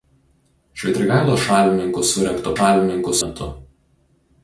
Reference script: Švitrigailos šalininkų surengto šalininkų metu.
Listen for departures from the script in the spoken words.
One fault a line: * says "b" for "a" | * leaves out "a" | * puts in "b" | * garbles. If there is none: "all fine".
all fine